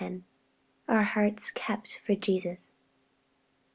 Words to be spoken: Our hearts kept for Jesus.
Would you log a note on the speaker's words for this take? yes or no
no